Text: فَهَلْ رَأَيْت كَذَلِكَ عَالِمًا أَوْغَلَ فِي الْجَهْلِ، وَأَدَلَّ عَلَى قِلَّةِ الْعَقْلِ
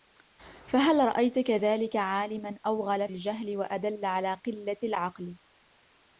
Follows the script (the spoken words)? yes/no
no